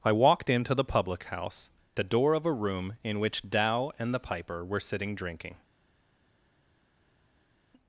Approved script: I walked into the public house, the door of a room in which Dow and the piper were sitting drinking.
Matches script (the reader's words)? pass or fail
pass